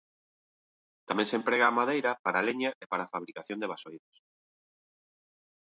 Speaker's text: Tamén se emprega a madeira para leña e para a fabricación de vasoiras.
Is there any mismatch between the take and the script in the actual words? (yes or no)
no